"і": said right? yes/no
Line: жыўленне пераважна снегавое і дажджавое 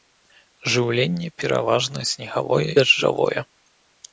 no